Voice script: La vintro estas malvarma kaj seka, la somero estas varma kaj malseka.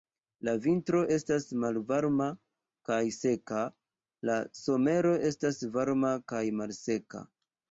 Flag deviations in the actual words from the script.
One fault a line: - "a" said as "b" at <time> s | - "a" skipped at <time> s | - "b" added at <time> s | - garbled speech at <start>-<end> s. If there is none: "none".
none